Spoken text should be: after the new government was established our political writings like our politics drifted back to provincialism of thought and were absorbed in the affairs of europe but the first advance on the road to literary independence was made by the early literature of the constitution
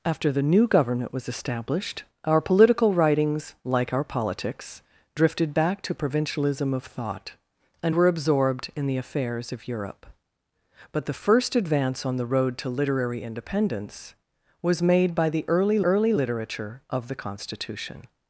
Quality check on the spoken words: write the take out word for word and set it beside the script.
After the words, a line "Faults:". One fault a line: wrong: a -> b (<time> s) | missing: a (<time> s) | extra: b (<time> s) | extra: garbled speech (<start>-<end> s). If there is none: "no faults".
after the new government was established our political writings like our politics drifted back to provincialism of thought and were absorbed in the affairs of europe but the first advance on the road to literary independence was made by the early early literature of the constitution
Faults:
extra: early (15.8 s)